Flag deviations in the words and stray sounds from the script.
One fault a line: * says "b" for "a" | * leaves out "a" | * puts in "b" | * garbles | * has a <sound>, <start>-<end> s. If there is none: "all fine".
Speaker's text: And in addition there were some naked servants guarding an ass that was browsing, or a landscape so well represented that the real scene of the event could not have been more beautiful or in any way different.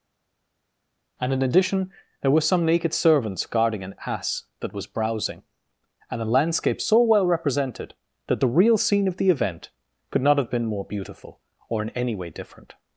* says "and" for "or"